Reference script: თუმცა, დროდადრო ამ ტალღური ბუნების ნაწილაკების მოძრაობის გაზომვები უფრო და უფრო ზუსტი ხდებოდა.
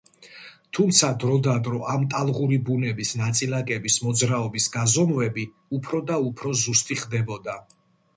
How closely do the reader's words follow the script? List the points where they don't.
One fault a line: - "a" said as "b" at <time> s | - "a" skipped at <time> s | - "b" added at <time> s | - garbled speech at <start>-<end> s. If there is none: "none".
none